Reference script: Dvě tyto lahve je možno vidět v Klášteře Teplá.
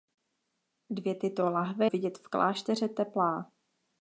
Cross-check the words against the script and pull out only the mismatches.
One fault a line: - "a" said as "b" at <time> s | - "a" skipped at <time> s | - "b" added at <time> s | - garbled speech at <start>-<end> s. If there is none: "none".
- "je možno" skipped at 1.9 s